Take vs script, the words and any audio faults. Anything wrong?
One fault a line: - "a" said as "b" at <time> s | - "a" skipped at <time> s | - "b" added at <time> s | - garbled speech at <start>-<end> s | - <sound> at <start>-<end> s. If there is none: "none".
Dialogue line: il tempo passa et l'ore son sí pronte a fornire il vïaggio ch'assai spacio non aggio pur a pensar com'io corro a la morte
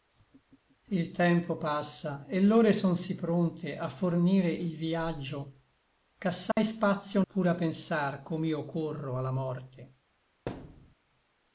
- dropout at 6.5-6.6 s
- "non aggio" skipped at 7.2 s
- thud at 10.5-10.9 s